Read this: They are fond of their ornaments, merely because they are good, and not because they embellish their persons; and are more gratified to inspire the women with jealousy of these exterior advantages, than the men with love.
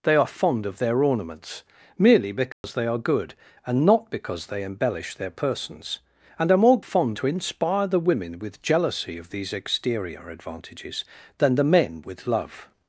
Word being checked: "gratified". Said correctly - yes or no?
no